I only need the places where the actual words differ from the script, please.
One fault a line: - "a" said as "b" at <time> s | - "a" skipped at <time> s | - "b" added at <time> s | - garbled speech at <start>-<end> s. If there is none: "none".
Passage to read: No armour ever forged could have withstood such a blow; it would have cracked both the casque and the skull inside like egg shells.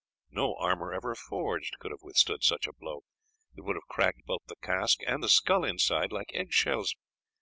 none